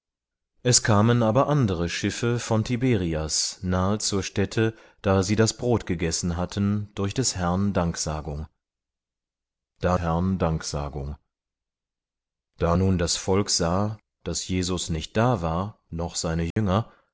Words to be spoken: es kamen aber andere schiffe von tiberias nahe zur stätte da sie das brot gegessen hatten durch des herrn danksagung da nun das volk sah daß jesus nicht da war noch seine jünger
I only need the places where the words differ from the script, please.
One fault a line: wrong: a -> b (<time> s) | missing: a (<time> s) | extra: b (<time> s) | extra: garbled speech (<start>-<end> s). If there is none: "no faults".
extra: herrn danksagung da (10.0 s)